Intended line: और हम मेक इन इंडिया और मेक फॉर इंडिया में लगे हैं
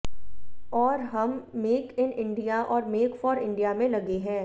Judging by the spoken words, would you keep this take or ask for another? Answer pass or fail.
pass